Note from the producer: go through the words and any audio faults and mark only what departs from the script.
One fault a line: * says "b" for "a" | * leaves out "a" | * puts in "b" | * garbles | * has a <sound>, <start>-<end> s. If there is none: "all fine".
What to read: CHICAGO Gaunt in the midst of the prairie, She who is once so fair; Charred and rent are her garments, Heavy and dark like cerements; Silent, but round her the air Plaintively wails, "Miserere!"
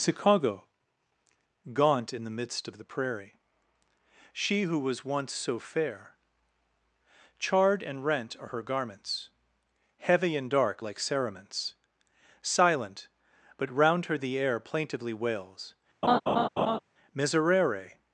* says "was" for "is"
* has a laugh, 16.0-16.8 s